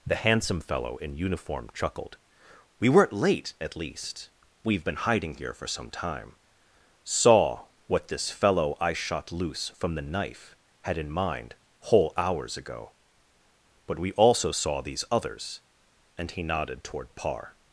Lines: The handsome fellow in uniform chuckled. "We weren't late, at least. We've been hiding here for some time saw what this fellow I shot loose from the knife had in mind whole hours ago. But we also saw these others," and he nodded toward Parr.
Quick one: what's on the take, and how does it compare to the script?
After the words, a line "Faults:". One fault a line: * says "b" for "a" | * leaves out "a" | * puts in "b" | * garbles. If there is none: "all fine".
The handsome fellow in uniform chuckled. "We weren't late, at least. We've been hiding here for some time saw what this fellow I shot loose from the knife had in mind whole hours ago. But we also saw these others," and he nodded toward Parr.
Faults:
all fine